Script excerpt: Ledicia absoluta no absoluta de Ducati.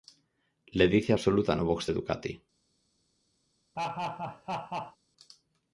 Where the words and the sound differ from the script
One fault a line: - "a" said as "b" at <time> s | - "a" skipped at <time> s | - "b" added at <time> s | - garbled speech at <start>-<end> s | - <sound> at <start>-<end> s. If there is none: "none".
- "absoluta" said as "box" at 1.6 s
- laugh at 3.8-5.0 s